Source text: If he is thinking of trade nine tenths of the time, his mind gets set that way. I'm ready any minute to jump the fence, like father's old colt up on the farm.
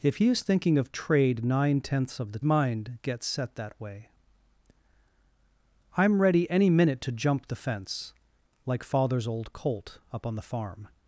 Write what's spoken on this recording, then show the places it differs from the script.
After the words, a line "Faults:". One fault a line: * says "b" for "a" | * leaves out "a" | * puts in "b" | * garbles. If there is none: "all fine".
If he is thinking of trade nine tenths of the mind gets set that way. I'm ready any minute to jump the fence, like father's old colt up on the farm.
Faults:
* leaves out "time his"